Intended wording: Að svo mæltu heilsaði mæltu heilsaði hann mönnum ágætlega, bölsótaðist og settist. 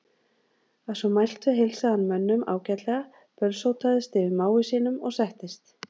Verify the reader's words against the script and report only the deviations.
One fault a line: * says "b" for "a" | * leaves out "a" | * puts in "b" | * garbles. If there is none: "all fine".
* leaves out "mæltu heilsaði"
* puts in "yfir mági sínum"